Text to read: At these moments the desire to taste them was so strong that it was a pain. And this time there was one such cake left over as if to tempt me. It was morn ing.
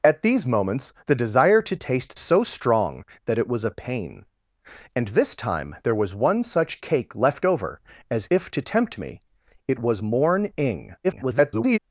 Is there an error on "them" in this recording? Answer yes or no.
yes